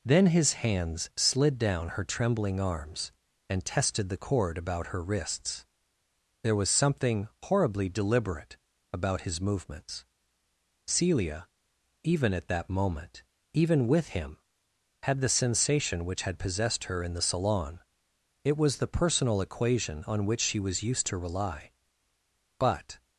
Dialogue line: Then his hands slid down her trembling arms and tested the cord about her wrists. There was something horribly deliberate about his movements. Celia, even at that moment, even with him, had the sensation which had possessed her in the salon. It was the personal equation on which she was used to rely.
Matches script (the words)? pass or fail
fail